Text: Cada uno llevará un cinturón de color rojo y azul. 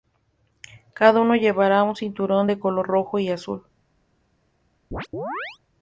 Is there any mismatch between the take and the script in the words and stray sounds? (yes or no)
yes